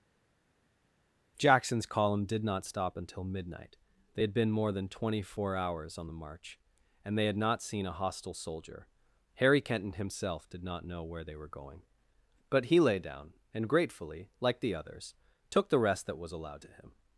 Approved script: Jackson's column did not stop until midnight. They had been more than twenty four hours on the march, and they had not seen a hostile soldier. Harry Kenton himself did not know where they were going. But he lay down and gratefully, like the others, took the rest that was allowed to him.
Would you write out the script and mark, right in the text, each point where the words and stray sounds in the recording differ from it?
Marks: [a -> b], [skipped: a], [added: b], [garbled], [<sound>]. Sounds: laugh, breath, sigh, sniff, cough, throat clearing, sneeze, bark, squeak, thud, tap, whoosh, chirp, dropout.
Jackson's column did not stop until midnight. They had been more than twenty four hours on the march, and they had not seen a hostile soldier. Harry Kenton himself did not know where they were going. But he lay down and gratefully, like the others, took the rest that was allowed to him.